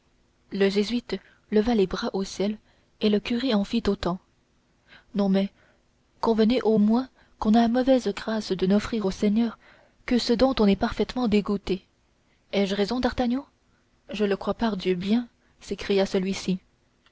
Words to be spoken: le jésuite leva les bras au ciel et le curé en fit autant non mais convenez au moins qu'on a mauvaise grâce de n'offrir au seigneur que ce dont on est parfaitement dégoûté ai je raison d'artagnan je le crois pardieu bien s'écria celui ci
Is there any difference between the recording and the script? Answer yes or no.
no